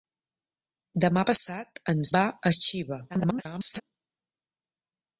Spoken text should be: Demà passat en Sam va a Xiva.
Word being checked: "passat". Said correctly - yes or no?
yes